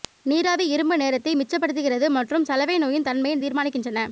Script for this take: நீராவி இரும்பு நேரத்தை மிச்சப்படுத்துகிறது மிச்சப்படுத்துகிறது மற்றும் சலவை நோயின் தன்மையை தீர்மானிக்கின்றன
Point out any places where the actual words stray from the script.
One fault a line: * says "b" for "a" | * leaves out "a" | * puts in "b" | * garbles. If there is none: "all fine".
* leaves out "மிச்சப்படுத்துகிறது"